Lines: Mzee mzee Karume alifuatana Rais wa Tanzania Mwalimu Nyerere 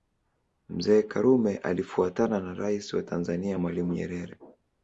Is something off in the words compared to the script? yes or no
yes